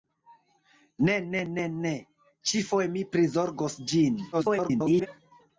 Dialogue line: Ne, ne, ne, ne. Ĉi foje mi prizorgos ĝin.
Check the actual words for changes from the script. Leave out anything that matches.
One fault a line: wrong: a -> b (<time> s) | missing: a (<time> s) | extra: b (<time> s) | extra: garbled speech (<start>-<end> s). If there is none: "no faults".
extra: garbled speech (4.3-5.1 s)